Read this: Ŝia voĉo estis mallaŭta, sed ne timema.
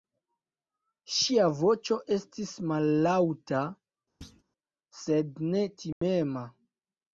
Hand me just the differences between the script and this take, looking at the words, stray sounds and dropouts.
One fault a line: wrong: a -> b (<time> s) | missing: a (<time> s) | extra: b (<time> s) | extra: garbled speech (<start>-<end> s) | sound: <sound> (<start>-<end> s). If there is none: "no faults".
sound: thud (4.2-4.4 s)
sound: dropout (5.9-6.0 s)